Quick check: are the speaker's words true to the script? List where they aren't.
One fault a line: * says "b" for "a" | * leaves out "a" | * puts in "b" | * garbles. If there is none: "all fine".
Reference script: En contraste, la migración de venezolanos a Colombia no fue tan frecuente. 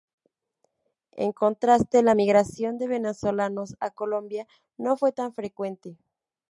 all fine